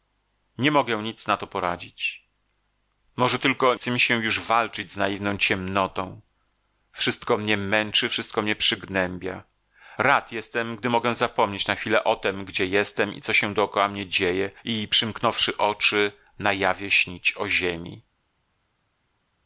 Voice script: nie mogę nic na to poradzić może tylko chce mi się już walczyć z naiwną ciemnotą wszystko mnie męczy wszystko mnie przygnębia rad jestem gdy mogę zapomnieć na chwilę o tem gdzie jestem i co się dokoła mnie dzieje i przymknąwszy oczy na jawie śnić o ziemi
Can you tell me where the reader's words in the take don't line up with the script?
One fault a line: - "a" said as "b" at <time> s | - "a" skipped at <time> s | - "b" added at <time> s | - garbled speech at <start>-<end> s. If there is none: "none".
none